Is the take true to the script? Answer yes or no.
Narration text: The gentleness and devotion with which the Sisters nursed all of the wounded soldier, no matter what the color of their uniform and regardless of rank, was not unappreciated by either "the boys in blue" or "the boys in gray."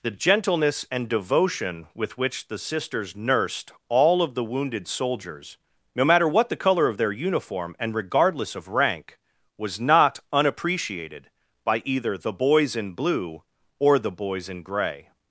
no